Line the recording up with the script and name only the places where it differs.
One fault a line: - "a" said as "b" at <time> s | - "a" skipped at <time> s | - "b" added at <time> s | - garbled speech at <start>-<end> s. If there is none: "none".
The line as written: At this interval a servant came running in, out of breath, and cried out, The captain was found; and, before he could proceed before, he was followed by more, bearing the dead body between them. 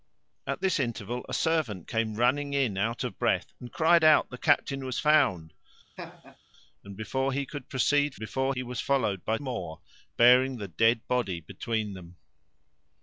none